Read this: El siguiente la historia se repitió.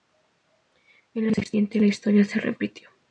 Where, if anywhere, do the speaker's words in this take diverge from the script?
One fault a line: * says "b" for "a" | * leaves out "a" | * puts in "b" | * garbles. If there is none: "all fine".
all fine